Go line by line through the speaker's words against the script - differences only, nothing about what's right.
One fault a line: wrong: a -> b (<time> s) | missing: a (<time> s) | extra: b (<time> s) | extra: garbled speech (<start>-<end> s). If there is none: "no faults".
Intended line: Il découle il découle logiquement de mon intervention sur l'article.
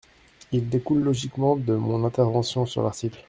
missing: il découle (1.0 s)